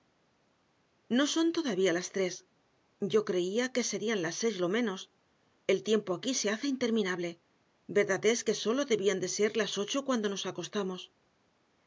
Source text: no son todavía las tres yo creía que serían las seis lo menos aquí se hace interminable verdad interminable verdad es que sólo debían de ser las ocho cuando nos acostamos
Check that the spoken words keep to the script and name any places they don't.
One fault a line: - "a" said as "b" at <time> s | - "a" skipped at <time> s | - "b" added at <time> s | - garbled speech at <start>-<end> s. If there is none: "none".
- "el tiempo" added at 5.7 s
- "interminable verdad" skipped at 8.2 s